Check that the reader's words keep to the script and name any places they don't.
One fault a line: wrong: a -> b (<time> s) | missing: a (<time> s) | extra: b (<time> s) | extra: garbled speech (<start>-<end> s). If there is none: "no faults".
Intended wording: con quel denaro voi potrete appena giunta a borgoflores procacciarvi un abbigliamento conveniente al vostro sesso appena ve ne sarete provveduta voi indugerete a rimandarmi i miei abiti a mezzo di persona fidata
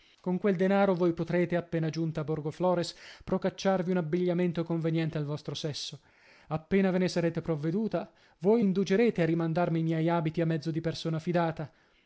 no faults